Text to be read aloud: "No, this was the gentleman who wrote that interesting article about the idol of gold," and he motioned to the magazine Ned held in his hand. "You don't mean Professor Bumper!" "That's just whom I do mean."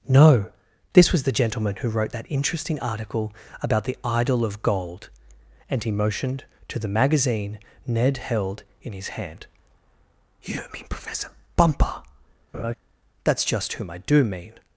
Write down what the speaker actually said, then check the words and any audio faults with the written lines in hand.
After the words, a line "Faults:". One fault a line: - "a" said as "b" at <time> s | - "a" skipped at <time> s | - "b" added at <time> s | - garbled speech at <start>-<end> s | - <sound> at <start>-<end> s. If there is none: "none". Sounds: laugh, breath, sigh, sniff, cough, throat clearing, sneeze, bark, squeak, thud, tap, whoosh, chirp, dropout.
"No, this was the gentleman who wrote that interesting article about the idol of gold," and he motioned to the magazine Ned held in his hand. "You mean Professor Bumper!" "That's just whom I do mean."
Faults:
- "don't" skipped at 10.6 s
- laugh at 12.5-12.7 s